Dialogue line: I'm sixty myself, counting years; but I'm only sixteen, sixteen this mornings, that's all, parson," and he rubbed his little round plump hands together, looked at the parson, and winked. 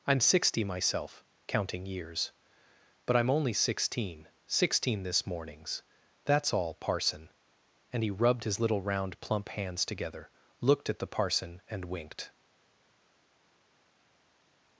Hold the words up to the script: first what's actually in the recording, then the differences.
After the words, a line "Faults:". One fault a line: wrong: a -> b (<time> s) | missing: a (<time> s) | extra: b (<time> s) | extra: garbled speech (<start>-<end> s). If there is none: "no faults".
I'm sixty myself, counting years; but I'm only sixteen, sixteen this mornings, that's all, parson," and he rubbed his little round plump hands together, looked at the parson, and winked.
Faults:
no faults